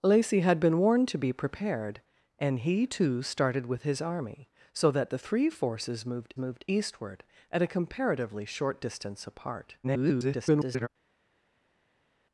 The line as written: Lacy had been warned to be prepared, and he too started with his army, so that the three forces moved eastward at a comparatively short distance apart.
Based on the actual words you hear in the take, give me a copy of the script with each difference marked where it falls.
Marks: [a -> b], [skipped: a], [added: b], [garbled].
Lacy had been warned to be prepared, and he too started with his army, so that the three forces moved [added: moved] eastward at a comparatively short distance apart. [garbled]